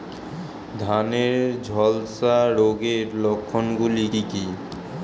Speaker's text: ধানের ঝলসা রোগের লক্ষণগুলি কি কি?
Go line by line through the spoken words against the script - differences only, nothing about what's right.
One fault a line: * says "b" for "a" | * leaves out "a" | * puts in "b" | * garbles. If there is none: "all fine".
all fine